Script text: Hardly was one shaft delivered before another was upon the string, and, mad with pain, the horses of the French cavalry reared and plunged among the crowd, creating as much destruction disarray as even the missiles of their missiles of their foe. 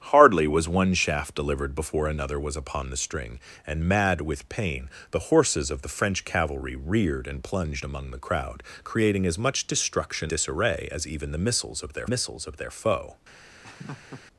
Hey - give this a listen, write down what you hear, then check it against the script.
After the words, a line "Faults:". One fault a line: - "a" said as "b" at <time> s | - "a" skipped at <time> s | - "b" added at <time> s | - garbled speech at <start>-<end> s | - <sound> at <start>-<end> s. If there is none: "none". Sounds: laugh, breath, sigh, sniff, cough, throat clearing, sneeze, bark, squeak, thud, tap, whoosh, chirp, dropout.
Hardly was one shaft delivered before another was upon the string, and, mad with pain, the horses of the French cavalry reared and plunged among the crowd, creating as much destruction disarray as even the missiles of their missiles of their foe.
Faults:
- laugh at 13.6-14.2 s